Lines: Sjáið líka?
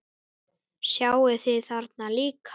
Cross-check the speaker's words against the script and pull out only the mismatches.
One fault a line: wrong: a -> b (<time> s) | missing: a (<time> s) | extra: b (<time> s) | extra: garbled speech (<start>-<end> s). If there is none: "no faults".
extra: þið þarna (1.4 s)